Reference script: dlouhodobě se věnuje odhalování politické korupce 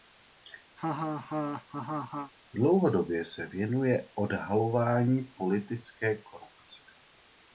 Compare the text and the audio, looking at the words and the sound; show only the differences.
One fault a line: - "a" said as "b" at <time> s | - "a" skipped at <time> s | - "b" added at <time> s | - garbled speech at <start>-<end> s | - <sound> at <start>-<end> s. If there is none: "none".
- laugh at 0.8-2.3 s